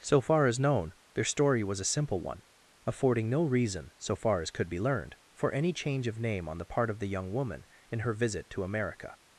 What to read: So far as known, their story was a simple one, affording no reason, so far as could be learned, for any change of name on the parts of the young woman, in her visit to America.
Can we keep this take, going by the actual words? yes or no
no